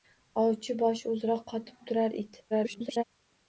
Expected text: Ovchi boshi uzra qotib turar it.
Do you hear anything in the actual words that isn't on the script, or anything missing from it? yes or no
yes